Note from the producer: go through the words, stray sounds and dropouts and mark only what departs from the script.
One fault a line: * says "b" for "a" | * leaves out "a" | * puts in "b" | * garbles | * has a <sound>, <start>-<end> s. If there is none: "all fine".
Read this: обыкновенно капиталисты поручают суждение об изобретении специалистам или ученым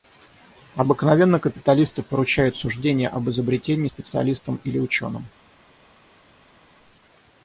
all fine